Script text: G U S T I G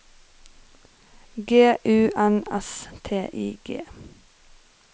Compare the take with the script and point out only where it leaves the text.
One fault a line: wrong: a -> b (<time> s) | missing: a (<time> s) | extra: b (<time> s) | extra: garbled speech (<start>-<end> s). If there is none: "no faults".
extra: N (2.2 s)